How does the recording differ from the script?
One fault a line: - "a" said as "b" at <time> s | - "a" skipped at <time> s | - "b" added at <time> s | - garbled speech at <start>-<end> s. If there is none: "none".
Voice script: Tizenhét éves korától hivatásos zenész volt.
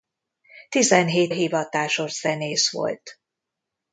- "éves korától" skipped at 1.4 s